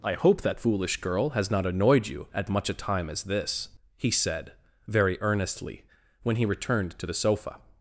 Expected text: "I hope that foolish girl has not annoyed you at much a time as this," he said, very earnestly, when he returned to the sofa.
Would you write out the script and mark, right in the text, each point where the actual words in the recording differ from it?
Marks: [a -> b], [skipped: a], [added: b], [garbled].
"I hope that foolish girl has not annoyed you at much a time as this," he said, very earnestly, when he returned to the sofa.